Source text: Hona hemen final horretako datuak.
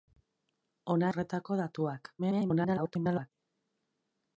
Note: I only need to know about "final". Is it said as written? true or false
false